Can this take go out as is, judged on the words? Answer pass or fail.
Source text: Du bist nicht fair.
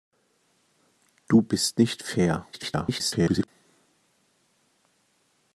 fail